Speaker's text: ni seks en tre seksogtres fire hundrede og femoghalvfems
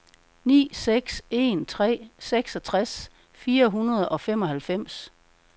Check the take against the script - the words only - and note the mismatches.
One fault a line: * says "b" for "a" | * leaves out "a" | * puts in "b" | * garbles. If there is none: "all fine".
all fine